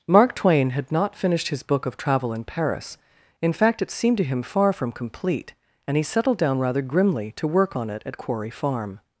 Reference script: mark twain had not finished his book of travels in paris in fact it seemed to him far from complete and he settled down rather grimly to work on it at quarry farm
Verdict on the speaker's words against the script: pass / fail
fail